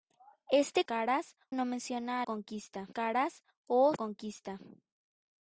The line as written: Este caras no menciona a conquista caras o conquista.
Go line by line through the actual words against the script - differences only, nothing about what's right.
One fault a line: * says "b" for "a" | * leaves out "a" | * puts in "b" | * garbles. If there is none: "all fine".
all fine